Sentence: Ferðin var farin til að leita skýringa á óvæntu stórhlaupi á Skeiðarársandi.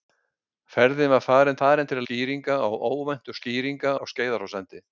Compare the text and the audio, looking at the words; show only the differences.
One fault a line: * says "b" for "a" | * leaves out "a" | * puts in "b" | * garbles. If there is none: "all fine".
* puts in "farin"
* leaves out "leita"
* says "skýringa" for "stórhlaupi"